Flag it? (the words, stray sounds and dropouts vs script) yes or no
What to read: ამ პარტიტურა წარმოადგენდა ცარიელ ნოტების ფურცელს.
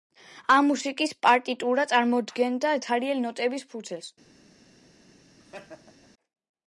yes